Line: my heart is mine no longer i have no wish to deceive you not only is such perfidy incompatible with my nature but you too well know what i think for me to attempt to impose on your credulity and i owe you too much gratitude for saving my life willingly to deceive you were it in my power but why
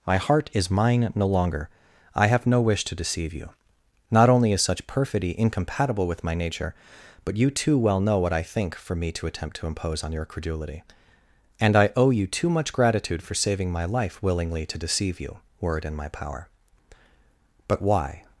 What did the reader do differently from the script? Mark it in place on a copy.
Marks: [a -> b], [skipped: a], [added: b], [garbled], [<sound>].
my heart is mine no longer i have no wish to deceive you not only is such perfidy incompatible with my nature but you too well know what i think for me to attempt to impose on your credulity and i owe you too much gratitude for saving my life willingly to deceive you were it in my power but why